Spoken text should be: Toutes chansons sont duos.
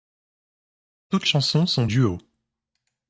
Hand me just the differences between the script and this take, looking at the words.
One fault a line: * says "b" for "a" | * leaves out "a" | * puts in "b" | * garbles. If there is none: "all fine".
all fine